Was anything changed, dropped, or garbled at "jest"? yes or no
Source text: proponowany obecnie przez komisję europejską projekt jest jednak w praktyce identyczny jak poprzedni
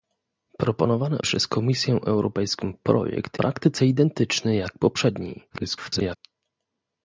yes